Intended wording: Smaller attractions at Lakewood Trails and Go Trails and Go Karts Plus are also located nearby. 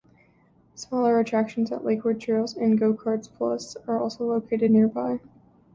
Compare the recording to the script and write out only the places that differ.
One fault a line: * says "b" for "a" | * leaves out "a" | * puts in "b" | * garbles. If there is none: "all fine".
* leaves out "Trails and Go"